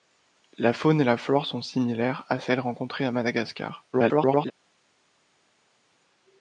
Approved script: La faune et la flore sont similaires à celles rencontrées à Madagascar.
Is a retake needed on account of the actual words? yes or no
yes